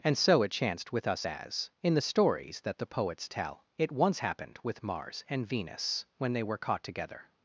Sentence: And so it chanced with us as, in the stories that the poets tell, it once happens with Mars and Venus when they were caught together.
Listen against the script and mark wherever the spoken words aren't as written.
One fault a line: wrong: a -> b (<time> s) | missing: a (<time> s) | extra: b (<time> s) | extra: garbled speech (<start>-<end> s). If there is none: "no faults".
wrong: happens -> happened (4.2 s)